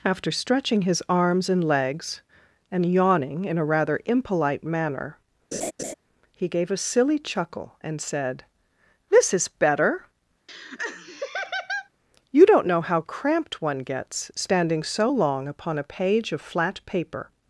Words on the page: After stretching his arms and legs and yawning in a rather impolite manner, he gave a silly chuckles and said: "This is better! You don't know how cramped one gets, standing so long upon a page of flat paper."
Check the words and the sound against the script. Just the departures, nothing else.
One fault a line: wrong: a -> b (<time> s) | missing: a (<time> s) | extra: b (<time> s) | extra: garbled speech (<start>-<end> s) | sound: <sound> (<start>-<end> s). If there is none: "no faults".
sound: laugh (5.5-5.9 s)
wrong: chuckles -> chuckle (7.2 s)
sound: laugh (10.5-11.9 s)